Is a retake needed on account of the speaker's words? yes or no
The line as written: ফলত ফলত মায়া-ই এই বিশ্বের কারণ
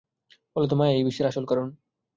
yes